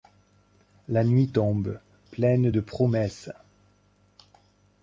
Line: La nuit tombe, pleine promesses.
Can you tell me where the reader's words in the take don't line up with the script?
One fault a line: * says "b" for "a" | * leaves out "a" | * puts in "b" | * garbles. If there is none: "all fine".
* puts in "de"